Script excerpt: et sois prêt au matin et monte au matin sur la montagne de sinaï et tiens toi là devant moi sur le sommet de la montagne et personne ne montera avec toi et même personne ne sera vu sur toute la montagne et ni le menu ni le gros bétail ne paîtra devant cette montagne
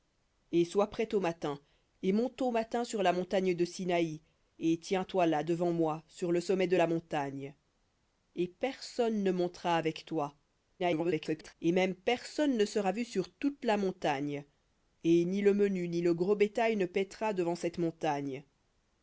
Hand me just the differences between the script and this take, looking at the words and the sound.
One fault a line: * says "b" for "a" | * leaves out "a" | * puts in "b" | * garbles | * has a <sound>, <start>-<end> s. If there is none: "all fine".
* garbles